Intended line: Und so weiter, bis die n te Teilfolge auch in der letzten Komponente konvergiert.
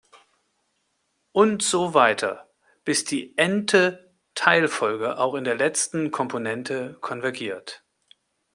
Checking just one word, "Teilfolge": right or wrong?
right